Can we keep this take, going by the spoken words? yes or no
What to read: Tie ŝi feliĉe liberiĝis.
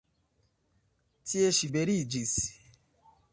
no